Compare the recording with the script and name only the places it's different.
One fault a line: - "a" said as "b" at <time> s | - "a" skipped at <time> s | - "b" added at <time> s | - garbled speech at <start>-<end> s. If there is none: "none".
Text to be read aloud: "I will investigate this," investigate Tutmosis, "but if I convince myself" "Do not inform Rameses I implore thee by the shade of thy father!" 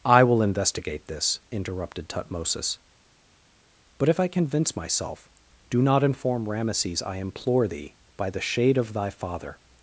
- "investigate" said as "interrupted" at 1.5 s